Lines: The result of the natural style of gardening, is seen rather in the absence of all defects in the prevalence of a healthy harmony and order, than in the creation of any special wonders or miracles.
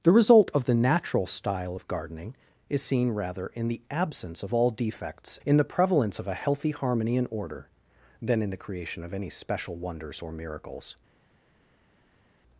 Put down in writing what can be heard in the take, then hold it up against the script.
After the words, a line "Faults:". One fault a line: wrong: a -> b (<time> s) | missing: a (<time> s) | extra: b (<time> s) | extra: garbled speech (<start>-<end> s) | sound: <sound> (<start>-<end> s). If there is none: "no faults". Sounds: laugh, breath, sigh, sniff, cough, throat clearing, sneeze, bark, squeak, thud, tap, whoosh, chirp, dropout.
The result of the natural style of gardening, is seen rather in the absence of all defects in the prevalence of a healthy harmony and order, than in the creation of any special wonders or miracles.
Faults:
no faults